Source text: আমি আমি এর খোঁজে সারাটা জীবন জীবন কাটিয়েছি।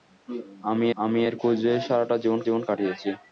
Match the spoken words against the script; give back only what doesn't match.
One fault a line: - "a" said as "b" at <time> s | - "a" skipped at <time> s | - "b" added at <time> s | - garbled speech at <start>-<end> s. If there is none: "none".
none